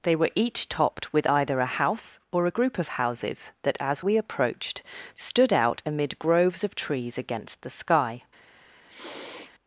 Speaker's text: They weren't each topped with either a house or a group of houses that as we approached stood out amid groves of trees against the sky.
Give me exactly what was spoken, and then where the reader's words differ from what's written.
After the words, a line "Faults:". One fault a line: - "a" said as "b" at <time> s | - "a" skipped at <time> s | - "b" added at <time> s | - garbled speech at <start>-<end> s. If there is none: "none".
They were each topped with either a house or a group of houses that as we approached stood out amid groves of trees against the sky.
Faults:
- "weren't" said as "were" at 0.1 s